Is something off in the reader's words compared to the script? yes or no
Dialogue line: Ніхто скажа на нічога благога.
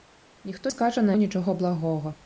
no